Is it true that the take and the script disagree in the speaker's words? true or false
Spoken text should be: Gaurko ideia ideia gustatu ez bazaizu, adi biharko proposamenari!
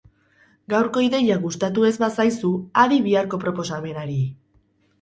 true